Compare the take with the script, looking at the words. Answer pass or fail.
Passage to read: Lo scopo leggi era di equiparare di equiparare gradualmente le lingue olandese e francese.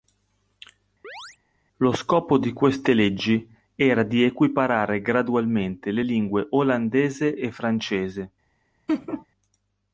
fail